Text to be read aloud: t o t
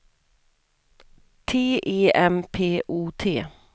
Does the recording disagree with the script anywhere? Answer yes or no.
yes